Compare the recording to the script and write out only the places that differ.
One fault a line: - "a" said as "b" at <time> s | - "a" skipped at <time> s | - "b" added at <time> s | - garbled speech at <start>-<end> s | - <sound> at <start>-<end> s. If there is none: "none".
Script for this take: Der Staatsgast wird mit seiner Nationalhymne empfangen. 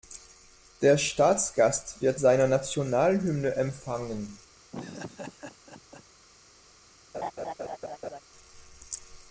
- "mit" skipped at 2.2 s
- laugh at 4.7-6.0 s
- laugh at 7.1-8.2 s